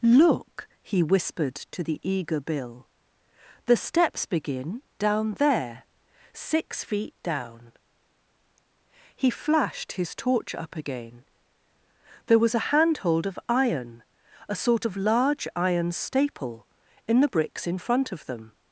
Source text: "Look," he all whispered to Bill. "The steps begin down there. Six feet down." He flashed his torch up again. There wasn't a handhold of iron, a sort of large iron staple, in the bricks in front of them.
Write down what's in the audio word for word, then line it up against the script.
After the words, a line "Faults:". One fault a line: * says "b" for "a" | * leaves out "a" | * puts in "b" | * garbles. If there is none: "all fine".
"Look," he whispered to the eager Bill. "The steps begin down there. Six feet down." He flashed his torch up again. There was a handhold of iron, a sort of large iron staple, in the bricks in front of them.
Faults:
* leaves out "all"
* puts in "the eager"
* says "was" for "wasn't"